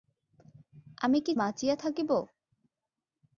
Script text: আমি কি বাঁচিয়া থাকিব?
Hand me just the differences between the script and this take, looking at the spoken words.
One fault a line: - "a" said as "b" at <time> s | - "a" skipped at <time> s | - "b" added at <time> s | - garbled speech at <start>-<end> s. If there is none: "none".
none